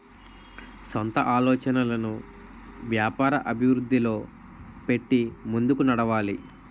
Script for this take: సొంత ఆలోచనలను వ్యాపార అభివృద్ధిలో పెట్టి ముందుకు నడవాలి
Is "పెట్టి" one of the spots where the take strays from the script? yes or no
no